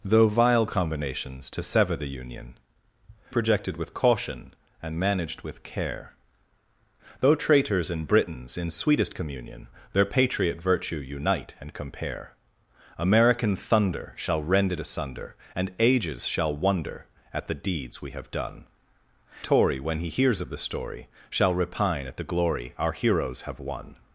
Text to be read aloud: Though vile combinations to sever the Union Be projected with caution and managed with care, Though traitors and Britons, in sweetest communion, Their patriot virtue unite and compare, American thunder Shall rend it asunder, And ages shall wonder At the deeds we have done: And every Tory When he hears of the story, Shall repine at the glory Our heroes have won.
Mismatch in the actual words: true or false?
true